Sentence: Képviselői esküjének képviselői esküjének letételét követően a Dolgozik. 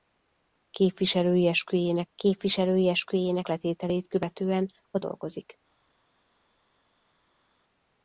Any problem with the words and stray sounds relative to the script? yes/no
no